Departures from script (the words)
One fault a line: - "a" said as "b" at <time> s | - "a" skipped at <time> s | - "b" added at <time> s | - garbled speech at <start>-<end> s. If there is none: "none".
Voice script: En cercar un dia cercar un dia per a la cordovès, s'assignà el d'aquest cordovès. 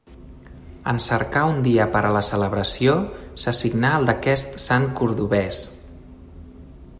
- "cercar un dia" skipped at 1.9 s
- "cordovès" said as "celebració" at 2.3 s
- "sant" added at 4.7 s